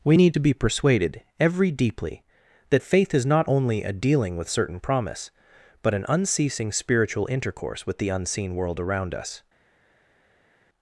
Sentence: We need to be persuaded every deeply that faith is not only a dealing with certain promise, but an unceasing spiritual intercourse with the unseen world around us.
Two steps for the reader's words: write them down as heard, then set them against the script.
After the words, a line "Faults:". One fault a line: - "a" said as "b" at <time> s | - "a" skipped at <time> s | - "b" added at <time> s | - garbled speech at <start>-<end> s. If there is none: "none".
We need to be persuaded every deeply that faith is not only a dealing with certain promise, but an unceasing spiritual intercourse with the unseen world around us.
Faults:
none